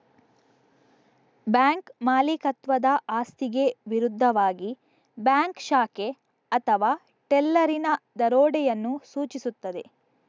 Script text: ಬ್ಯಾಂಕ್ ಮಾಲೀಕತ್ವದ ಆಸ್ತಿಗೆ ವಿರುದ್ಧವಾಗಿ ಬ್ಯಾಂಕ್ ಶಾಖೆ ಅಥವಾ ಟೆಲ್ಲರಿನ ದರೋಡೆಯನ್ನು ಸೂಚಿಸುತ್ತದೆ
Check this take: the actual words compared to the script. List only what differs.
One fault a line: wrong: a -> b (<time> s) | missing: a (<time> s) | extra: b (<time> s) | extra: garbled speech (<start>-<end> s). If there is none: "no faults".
no faults